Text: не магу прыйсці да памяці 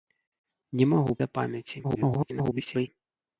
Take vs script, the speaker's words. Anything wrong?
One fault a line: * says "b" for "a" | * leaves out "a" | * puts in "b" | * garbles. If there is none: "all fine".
* leaves out "прыйсці"
* garbles